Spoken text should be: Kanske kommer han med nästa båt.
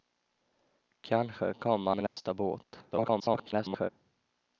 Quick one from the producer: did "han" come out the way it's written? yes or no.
no